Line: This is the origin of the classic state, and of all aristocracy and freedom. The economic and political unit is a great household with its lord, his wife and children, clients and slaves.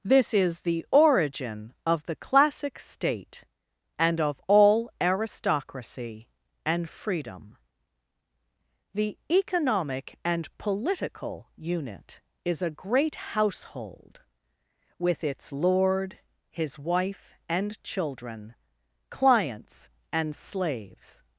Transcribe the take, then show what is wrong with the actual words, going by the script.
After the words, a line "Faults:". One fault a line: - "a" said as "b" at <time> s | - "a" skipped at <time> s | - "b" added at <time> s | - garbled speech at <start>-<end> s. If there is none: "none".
This is the origin of the classic state, and of all aristocracy and freedom. The economic and political unit is a great household with its lord, his wife and children, clients and slaves.
Faults:
none